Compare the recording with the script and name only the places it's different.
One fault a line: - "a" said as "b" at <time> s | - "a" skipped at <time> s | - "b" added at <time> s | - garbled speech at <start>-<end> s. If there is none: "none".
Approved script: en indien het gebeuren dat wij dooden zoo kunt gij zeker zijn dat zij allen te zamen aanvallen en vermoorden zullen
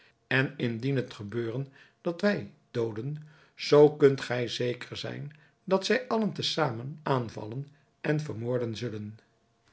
none